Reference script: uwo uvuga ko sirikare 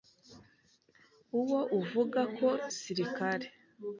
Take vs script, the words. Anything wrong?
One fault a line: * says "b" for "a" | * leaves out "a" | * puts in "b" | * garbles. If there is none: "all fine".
all fine